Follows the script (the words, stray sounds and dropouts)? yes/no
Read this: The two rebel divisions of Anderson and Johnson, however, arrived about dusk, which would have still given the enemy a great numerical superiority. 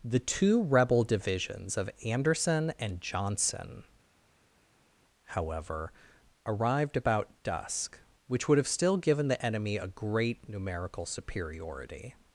yes